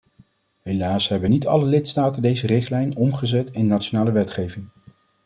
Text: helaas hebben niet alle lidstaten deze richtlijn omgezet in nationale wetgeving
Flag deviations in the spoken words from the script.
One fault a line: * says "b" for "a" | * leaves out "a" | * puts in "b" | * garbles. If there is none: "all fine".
all fine